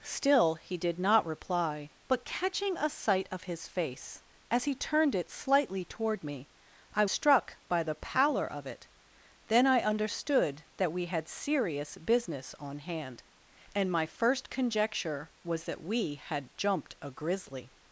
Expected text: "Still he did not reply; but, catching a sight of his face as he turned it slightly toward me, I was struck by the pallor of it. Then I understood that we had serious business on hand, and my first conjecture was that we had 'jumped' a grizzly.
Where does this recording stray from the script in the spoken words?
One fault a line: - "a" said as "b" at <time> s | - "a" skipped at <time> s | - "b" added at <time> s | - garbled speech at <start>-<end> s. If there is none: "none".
- "was" skipped at 7.0 s